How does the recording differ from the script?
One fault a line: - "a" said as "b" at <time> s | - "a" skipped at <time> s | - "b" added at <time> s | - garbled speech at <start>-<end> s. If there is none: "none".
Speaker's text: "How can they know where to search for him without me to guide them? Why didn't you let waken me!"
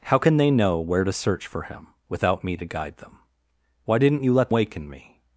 none